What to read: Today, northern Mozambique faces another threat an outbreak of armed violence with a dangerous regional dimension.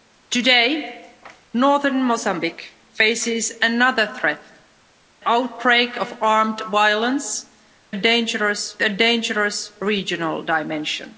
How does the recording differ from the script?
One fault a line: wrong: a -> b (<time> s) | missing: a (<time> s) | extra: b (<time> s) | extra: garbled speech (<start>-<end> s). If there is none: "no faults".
missing: an (4.4 s)
wrong: with -> dangerous (7.9 s)